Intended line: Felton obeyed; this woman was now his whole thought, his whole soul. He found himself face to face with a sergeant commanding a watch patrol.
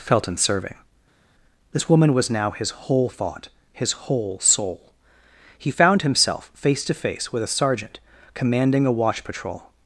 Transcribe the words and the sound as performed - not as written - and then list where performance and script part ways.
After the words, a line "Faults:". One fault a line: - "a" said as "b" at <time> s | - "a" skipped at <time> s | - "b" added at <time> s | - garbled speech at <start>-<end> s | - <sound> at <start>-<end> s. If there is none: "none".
Felton serving; this woman was now his whole thought, his whole soul. He found himself face to face with a sergeant commanding a watch patrol.
Faults:
- "obeyed" said as "serving" at 0.3 s